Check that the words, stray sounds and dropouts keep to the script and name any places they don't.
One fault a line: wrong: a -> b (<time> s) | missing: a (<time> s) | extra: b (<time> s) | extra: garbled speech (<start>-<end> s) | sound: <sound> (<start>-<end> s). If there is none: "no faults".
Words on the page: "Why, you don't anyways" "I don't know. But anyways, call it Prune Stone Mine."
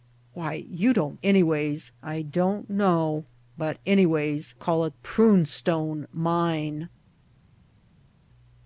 no faults